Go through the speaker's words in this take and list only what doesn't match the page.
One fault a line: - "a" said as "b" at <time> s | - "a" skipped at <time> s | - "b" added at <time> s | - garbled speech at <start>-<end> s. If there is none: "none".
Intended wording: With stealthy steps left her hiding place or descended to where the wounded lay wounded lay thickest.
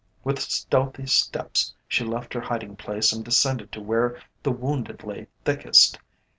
- "she" added at 1.9 s
- "or" said as "and" at 3.1 s
- "wounded lay" skipped at 5.3 s